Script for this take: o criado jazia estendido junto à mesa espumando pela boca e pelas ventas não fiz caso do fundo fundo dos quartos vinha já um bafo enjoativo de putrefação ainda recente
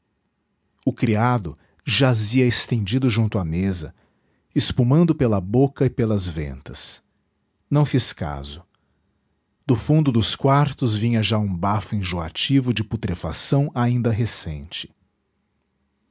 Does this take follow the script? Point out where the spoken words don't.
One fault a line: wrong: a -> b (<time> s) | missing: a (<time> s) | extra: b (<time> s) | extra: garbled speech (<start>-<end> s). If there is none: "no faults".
missing: fundo (10.1 s)